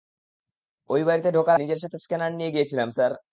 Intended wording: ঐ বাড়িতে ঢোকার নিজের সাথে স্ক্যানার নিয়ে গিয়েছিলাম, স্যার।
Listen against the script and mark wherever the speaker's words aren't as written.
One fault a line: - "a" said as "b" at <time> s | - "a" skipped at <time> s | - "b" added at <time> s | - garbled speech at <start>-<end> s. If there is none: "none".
none